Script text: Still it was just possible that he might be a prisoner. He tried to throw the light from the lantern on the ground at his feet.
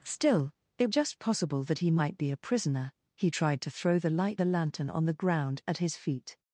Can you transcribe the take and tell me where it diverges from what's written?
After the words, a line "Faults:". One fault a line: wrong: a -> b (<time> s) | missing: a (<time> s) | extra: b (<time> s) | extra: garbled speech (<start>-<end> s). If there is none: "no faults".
Still it just possible that he might be a prisoner. He tried to throw the light the lantern on the ground at his feet.
Faults:
missing: was (0.9 s)
missing: from (4.4 s)